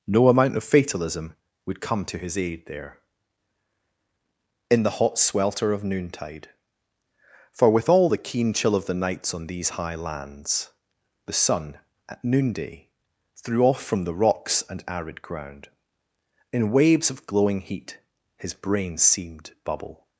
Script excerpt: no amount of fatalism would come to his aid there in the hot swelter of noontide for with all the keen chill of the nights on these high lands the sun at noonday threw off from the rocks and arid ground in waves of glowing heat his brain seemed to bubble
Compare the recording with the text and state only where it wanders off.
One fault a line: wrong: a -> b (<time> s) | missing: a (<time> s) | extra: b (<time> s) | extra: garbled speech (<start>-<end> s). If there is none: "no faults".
missing: to (19.5 s)